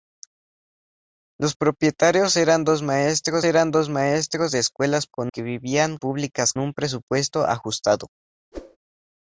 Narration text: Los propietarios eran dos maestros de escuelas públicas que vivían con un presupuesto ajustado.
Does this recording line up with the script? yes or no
no